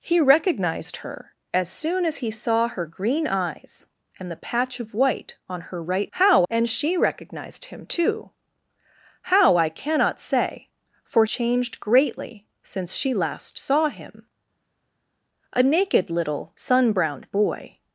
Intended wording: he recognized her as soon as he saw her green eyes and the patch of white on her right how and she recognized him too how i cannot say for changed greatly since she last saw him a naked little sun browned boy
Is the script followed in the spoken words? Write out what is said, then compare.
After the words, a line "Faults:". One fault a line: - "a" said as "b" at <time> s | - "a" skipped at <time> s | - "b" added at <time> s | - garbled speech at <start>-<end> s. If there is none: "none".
he recognized her as soon as he saw her green eyes and the patch of white on her right how and she recognized him too how i cannot say for changed greatly since she last saw him a naked little sun browned boy
Faults:
none